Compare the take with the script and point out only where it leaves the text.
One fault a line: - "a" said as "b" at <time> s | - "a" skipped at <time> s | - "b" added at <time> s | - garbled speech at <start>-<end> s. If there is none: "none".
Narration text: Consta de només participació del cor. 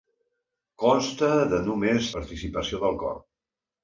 none